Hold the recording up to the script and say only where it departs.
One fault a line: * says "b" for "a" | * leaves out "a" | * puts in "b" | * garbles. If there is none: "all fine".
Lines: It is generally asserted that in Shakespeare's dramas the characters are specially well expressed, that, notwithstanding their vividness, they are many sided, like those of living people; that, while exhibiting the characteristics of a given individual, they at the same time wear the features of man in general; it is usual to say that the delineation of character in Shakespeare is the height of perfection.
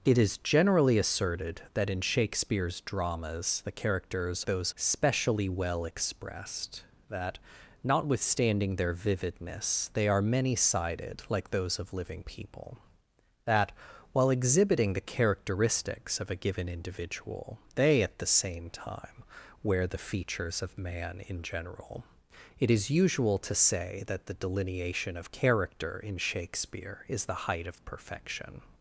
* says "those" for "are"